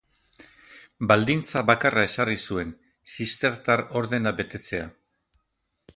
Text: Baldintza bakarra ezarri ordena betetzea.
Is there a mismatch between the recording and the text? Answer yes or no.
yes